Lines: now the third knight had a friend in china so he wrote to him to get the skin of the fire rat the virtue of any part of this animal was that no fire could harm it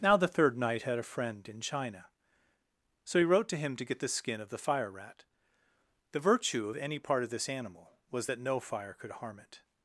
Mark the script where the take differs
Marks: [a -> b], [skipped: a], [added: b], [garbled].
now the third knight had a friend in china so he wrote to him to get the skin of the fire rat the virtue of any part of this animal was that no fire could harm it